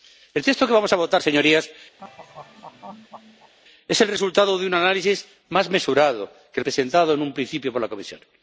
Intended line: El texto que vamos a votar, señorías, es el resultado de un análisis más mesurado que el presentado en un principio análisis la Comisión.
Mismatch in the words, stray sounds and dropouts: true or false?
true